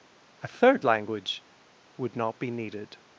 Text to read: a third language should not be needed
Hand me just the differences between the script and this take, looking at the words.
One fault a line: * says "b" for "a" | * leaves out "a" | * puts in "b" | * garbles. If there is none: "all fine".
* says "would" for "should"